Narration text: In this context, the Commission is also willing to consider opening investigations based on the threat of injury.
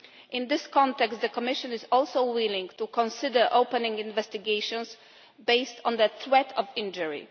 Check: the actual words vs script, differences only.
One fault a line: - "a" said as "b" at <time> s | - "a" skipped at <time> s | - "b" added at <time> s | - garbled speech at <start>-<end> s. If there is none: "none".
none